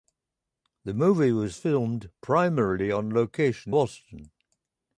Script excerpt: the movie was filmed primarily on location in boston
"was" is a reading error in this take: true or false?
false